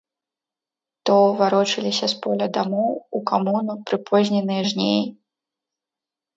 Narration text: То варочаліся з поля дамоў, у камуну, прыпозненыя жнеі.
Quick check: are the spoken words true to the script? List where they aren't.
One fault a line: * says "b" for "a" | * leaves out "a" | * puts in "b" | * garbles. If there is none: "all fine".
all fine